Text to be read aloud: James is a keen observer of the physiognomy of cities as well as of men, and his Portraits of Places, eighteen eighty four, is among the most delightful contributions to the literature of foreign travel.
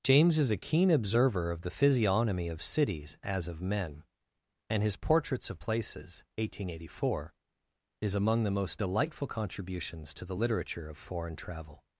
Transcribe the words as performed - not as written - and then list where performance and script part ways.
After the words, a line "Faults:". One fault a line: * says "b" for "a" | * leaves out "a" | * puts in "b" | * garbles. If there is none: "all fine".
James is a keen observer of the physiognomy of cities as of men, and his Portraits of Places, eighteen eighty four, is among the most delightful contributions to the literature of foreign travel.
Faults:
* leaves out "well as"